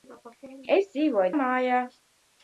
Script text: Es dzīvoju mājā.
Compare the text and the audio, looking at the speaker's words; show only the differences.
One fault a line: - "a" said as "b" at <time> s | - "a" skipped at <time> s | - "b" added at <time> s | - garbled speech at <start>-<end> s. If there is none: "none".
none